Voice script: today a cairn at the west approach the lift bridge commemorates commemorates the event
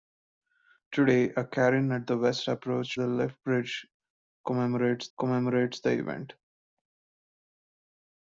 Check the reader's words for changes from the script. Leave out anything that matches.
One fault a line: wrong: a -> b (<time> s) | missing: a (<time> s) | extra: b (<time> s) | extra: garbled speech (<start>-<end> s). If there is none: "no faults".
no faults